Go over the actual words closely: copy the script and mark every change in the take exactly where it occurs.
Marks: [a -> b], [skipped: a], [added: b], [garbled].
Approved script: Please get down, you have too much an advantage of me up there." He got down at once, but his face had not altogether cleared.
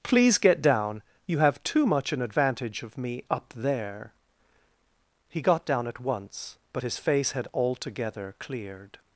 Please get down, you have too much an advantage of me up there." He got down at once, but his face had [skipped: not] altogether cleared.